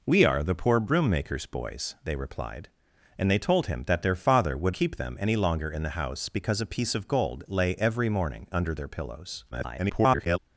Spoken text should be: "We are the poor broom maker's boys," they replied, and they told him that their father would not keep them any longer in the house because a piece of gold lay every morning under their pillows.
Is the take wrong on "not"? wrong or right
wrong